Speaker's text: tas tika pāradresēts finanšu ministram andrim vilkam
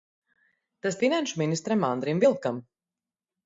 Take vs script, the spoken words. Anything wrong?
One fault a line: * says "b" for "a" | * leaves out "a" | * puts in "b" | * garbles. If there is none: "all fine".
* leaves out "tika pāradresēts"